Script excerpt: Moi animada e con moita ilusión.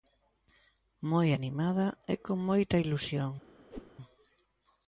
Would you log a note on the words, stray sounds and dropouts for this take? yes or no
yes